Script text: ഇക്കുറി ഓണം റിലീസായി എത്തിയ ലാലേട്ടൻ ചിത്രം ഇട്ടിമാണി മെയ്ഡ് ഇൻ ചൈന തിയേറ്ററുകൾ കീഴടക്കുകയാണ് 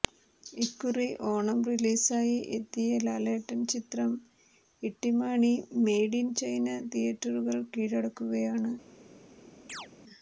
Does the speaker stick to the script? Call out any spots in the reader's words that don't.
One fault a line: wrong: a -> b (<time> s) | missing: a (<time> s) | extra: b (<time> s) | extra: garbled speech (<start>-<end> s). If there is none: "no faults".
no faults